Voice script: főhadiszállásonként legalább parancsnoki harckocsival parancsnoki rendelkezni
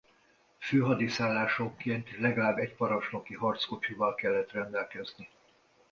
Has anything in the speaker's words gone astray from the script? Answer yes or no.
yes